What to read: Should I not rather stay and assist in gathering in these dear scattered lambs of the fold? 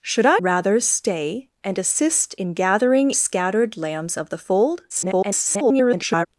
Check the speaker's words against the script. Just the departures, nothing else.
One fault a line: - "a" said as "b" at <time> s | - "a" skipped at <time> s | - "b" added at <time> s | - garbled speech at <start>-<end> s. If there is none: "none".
- "not" skipped at 0.4 s
- "in these dear" skipped at 3.1 s
- garbled speech at 4.9-6.3 s